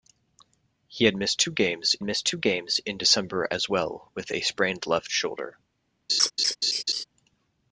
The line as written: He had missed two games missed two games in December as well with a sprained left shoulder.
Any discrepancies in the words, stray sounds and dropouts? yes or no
yes